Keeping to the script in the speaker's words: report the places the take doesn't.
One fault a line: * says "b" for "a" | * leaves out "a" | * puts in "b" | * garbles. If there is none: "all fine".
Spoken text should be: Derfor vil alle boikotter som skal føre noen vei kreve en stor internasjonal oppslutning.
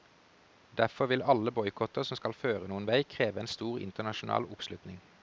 all fine